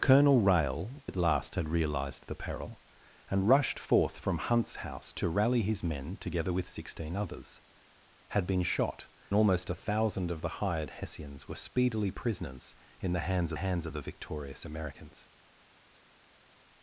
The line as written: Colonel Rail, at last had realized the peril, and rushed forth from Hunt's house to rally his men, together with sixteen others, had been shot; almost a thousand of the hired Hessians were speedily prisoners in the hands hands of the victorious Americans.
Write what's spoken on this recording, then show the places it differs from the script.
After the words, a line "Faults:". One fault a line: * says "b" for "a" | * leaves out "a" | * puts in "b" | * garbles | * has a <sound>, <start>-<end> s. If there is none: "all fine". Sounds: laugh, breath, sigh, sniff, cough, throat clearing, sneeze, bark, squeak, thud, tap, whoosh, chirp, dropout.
Colonel Rail, at last had realized the peril, and rushed forth from Hunt's house to rally his men, together with sixteen others, had been shot; almost a thousand of the hired Hessians were speedily prisoners in the hands hands of the victorious Americans.
Faults:
all fine